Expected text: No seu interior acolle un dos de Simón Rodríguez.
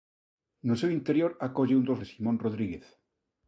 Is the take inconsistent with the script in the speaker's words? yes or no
no